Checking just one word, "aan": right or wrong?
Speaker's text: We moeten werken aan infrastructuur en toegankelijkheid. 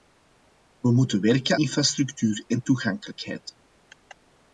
wrong